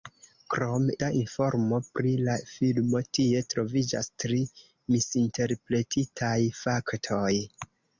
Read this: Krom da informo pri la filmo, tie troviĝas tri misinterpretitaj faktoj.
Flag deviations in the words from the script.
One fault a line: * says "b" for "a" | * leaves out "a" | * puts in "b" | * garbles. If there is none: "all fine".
all fine